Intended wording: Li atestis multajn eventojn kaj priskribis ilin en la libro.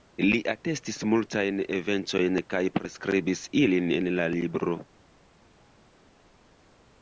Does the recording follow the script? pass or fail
pass